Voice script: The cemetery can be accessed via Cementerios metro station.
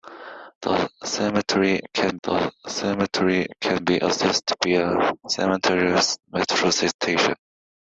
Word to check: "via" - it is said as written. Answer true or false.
true